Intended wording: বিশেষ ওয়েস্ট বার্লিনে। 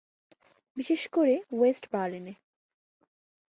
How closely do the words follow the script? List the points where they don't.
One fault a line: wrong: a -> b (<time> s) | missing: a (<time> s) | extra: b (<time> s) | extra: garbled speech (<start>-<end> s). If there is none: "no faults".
extra: করে (1.1 s)